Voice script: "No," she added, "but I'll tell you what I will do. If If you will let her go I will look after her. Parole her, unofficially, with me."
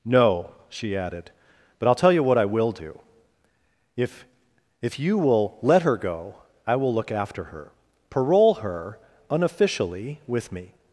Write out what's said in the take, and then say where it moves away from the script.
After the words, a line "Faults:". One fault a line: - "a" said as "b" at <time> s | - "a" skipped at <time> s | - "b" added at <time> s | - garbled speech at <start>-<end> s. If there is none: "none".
"No," she added, "but I'll tell you what I will do. If If you will let her go I will look after her. Parole her, unofficially, with me."
Faults:
none